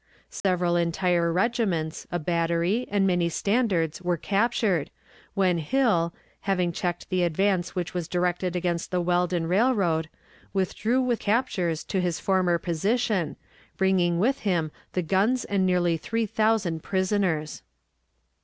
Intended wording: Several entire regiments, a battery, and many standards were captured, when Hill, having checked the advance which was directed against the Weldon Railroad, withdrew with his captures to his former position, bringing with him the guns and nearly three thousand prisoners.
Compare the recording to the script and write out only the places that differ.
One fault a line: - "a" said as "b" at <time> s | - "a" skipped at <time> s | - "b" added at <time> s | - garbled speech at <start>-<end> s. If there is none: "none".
- "his" skipped at 11.2 s